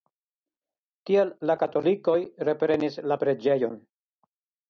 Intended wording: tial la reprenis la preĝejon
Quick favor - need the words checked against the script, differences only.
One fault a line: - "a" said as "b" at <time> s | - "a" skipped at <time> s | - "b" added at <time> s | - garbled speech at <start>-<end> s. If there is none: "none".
- "katolikoj" added at 1.6 s